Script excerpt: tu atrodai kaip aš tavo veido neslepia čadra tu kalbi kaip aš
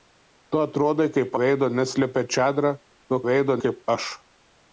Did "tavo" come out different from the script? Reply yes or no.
yes